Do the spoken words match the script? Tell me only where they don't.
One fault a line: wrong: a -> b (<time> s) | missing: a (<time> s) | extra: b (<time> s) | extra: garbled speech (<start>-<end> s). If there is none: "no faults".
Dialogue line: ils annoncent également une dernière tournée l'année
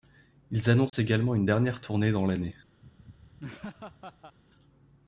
extra: dans (2.1 s)